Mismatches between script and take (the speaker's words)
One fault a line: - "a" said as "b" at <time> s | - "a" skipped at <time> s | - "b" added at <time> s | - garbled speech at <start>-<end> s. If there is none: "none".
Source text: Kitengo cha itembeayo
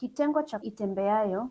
none